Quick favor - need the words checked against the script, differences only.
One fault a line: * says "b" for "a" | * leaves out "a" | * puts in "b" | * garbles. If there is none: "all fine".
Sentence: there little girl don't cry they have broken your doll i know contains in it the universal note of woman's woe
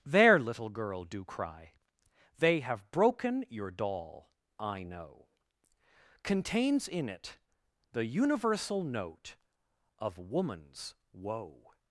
* says "do" for "don't"